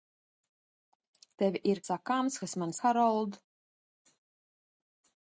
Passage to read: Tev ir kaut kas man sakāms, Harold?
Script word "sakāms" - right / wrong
wrong